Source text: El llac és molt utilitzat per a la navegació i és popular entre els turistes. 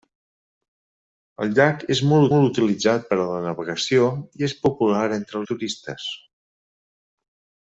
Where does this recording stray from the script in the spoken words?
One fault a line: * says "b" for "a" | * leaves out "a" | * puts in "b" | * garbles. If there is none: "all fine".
* puts in "molt"
* leaves out "els"